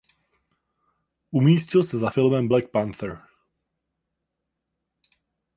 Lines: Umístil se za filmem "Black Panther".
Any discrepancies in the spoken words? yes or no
no